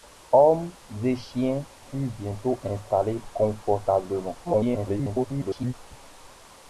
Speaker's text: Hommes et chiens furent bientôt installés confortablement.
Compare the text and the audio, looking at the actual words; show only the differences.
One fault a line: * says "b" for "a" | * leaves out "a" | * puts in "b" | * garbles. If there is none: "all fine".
* garbles